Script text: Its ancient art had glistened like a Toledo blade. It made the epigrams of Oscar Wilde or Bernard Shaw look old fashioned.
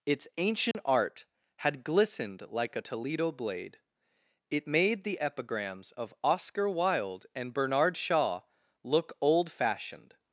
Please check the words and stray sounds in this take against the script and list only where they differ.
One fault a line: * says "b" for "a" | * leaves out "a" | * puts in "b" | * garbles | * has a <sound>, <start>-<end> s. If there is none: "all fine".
* has a dropout, 0.7-0.7 s
* says "and" for "or"